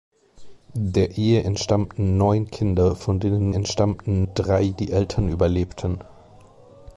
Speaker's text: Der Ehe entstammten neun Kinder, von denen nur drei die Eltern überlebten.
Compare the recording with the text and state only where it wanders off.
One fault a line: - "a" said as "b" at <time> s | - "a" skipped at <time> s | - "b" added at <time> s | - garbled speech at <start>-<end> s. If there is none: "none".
- "nur" said as "entstammten" at 3.5 s